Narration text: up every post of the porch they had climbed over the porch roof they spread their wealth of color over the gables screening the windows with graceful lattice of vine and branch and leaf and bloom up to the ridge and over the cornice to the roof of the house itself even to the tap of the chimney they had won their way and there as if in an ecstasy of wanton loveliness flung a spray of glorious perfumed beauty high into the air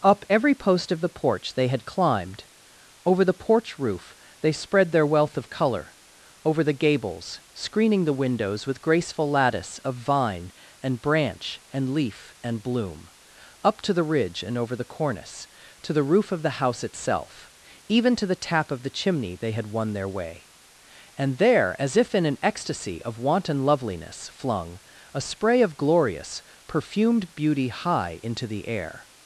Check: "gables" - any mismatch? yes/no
no